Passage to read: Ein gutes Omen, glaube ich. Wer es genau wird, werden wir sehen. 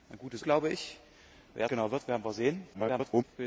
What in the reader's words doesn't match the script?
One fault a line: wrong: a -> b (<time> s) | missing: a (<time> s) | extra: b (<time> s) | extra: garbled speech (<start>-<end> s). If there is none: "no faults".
missing: Omen (0.4 s)
missing: es (1.7 s)
extra: garbled speech (2.7-3.2 s)